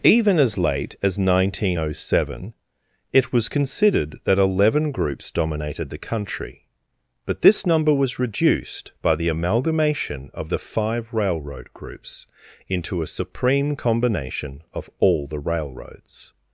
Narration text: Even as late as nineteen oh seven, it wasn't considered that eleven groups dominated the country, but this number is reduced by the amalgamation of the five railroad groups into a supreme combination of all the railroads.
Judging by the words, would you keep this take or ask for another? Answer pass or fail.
fail